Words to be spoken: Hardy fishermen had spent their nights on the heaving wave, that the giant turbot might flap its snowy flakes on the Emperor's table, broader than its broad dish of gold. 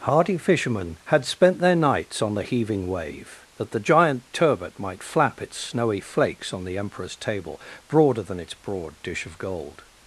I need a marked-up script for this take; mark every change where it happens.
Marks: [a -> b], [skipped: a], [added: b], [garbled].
Hardy fishermen had spent their nights on the heaving wave, that the giant turbot might flap its snowy flakes on the Emperor's table, broader than its broad dish of gold.